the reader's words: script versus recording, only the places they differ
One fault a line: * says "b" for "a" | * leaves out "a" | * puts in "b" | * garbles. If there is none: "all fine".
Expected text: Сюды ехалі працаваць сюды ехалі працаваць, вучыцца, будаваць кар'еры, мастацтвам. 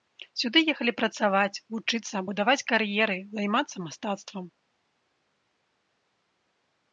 * leaves out "сюды ехалі працаваць"
* puts in "займацца"